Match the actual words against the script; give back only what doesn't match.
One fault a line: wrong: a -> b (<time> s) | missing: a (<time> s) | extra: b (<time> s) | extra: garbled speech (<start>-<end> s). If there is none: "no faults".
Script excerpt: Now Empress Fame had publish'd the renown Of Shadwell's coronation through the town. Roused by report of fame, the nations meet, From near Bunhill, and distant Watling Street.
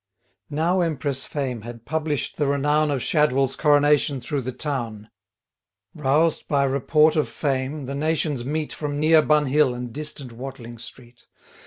no faults